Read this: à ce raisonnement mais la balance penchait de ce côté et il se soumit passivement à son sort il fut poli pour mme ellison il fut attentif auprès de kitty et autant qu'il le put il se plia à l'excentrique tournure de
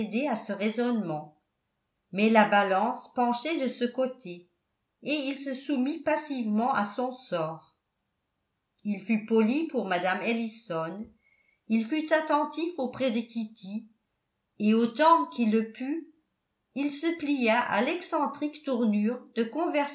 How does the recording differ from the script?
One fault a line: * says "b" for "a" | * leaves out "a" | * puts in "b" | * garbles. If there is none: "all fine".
all fine